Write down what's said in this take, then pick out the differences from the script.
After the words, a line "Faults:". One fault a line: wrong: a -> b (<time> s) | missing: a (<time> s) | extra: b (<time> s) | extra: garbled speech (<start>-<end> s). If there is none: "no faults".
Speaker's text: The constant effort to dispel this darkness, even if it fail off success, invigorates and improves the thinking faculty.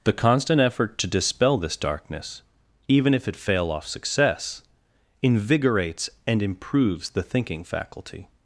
The constant effort to dispel this darkness, even if it fail off success, invigorates and improves the thinking faculty.
Faults:
no faults